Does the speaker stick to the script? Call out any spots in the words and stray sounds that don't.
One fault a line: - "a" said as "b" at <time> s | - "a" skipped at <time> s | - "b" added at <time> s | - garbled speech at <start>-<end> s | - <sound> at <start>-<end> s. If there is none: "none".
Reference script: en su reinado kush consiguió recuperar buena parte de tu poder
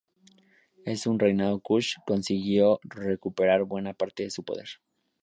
- "tu" said as "su" at 4.3 s